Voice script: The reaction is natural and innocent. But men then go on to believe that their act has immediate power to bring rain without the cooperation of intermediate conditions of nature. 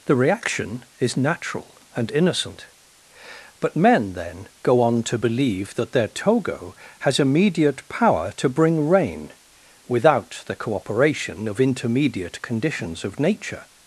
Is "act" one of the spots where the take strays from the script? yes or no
yes